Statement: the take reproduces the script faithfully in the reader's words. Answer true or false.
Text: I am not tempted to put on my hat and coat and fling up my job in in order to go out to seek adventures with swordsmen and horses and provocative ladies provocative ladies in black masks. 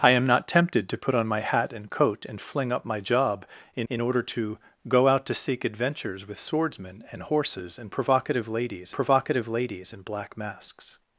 true